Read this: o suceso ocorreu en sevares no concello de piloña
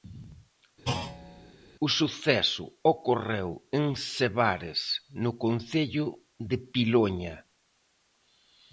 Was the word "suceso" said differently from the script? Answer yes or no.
no